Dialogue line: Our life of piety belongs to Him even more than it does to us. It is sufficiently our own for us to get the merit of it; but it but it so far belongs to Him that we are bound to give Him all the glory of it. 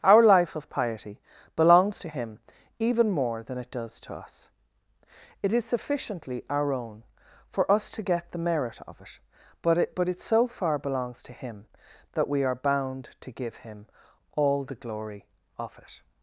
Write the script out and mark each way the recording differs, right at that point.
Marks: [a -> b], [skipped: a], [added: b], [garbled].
Our life of piety belongs to Him even more than it does to us. It is sufficiently our own for us to get the merit of it; but it but it so far belongs to Him that we are bound to give Him all the glory of it.